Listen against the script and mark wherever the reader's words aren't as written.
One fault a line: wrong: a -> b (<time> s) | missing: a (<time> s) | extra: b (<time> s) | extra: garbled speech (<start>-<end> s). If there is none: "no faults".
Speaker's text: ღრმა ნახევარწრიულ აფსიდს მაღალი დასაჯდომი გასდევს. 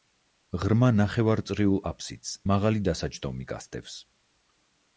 no faults